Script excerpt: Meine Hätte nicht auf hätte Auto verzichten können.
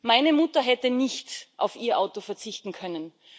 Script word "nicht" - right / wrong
right